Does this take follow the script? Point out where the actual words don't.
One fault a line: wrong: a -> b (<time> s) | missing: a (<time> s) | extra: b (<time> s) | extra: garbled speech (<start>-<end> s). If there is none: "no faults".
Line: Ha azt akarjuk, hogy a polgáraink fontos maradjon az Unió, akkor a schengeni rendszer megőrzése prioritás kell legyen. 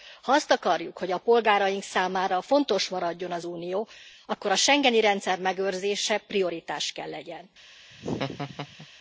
extra: számára (1.8 s)